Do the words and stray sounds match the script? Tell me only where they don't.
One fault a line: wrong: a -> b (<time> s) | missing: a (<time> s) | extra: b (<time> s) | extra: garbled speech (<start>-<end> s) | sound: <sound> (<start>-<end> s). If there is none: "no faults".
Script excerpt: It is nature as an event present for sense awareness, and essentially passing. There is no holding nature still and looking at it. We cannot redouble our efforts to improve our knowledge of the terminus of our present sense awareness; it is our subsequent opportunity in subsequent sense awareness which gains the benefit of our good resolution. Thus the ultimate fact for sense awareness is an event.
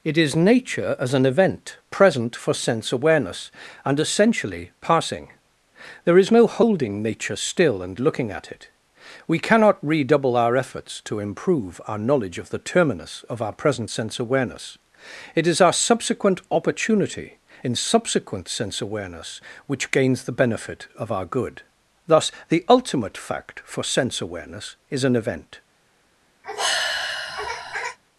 missing: resolution (21.6 s)
sound: sigh (26.4-28.0 s)